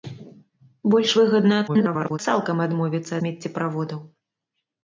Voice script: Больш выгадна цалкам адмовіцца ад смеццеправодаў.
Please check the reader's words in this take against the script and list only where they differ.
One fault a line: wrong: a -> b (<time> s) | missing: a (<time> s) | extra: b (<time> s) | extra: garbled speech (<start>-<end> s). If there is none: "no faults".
extra: garbled speech (1.7-2.2 s)
missing: ад (3.1 s)